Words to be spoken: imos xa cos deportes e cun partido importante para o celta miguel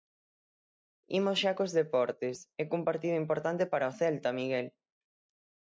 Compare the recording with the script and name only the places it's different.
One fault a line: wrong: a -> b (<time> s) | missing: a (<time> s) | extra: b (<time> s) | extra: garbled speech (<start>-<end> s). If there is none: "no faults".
no faults